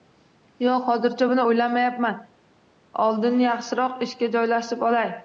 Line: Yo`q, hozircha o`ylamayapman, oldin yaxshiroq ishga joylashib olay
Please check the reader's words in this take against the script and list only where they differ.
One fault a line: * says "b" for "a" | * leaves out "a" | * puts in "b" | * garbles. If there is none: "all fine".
* puts in "buni"